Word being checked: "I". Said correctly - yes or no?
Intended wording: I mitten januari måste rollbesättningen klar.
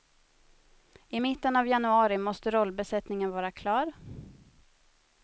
yes